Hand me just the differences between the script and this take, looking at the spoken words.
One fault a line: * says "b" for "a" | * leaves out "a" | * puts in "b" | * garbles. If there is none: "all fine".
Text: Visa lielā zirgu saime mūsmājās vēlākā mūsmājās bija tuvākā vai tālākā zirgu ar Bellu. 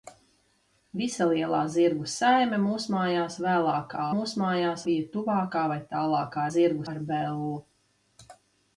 all fine